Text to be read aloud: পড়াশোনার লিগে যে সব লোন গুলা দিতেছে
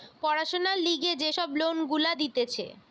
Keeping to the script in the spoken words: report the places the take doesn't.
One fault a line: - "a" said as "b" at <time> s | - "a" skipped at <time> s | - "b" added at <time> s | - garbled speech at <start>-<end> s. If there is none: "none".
none